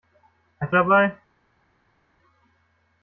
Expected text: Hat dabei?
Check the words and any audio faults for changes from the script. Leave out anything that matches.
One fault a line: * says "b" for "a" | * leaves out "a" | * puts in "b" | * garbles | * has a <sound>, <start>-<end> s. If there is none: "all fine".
all fine